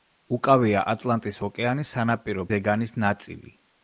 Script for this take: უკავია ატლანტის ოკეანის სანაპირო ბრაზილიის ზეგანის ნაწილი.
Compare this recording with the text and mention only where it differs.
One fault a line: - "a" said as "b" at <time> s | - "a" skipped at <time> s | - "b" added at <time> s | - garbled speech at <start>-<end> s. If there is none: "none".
- "ბრაზილიის" skipped at 2.5 s